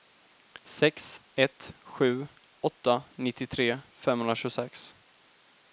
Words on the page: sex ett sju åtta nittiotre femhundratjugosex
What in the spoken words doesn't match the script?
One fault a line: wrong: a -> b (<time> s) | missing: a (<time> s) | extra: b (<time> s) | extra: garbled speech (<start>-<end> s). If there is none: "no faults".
no faults